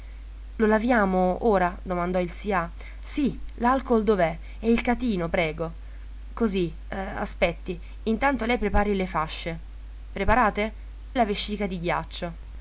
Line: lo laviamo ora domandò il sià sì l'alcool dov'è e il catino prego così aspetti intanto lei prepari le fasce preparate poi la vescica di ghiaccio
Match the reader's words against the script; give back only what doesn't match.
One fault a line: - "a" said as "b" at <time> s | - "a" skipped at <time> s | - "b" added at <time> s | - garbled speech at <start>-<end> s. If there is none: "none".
- "poi" skipped at 10.7 s